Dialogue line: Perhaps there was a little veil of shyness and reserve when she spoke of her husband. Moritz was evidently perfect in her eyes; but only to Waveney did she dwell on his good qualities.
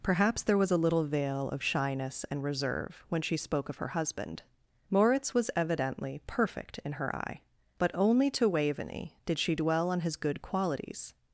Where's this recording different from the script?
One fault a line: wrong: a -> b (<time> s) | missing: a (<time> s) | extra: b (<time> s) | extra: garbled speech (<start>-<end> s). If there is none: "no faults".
wrong: eyes -> eye (7.2 s)